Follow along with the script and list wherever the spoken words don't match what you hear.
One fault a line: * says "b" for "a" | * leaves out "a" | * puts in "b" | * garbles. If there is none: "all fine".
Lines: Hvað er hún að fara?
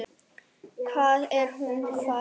all fine